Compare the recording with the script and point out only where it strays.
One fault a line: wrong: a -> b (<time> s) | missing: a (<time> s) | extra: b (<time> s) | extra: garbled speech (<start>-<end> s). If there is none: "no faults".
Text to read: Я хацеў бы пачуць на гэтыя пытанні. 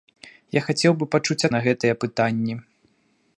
no faults